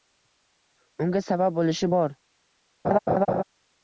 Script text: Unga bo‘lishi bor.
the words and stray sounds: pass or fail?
fail